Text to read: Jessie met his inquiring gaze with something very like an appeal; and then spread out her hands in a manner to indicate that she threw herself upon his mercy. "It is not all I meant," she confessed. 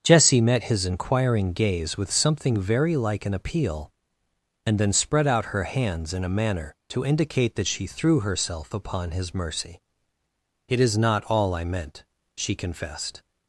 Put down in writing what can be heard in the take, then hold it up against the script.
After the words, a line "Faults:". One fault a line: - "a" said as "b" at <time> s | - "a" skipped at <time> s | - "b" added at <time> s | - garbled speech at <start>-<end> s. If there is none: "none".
Jessie met his inquiring gaze with something very like an appeal; and then spread out her hands in a manner to indicate that she threw herself upon his mercy. "It is not all I meant," she confessed.
Faults:
none